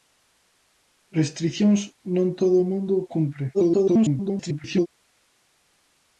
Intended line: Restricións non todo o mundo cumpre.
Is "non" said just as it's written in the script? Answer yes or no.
yes